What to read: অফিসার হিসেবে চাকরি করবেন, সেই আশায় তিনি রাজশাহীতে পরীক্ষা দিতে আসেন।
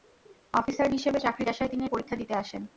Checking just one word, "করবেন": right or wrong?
wrong